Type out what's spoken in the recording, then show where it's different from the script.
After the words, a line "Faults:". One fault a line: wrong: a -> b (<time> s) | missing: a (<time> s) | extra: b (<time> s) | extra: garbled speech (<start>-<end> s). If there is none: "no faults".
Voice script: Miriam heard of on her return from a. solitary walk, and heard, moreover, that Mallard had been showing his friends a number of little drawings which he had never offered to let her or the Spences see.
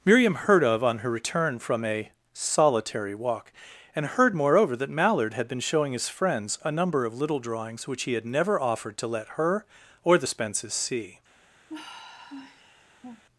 Miriam heard of on her return from a. solitary walk, and heard, moreover, that Mallard had been showing his friends a number of little drawings which he had never offered to let her or the Spences see.
Faults:
no faults